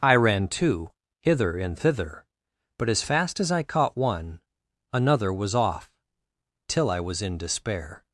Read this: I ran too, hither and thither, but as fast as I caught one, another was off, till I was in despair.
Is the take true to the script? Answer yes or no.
yes